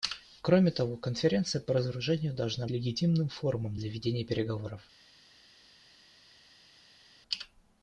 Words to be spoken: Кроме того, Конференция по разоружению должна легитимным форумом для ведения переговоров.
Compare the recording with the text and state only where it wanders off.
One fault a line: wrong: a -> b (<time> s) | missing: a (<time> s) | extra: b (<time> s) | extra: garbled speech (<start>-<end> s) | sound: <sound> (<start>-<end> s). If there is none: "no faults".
no faults